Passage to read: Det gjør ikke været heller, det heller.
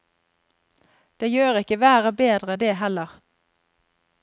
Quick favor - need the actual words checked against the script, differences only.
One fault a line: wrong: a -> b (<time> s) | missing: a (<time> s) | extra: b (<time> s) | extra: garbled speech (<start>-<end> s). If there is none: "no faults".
wrong: heller -> bedre (2.2 s)